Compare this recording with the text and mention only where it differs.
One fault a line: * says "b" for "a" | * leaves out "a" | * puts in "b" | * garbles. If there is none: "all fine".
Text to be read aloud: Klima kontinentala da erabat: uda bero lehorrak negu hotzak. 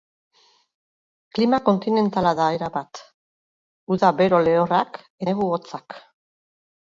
all fine